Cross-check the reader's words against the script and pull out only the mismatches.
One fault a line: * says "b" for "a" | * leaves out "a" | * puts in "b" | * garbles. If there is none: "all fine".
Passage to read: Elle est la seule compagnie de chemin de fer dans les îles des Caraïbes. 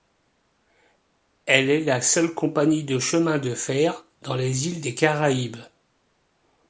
all fine